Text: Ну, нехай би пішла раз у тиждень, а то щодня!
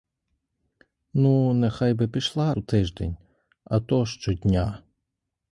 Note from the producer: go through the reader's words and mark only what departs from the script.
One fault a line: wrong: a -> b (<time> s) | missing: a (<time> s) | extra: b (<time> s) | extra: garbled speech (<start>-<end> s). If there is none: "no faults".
missing: раз (2.5 s)